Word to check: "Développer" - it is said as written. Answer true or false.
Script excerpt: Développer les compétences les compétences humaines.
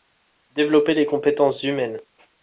true